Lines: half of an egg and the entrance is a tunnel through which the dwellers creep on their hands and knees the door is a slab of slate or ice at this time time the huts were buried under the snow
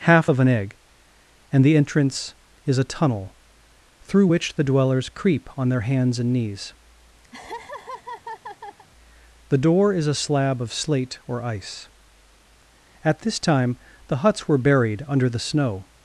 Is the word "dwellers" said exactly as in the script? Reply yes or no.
yes